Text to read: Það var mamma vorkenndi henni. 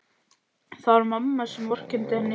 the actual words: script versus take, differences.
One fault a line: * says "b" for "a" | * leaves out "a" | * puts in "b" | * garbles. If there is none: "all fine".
* puts in "sem"